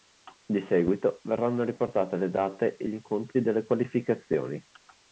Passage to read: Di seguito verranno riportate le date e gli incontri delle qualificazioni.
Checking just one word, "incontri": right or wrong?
right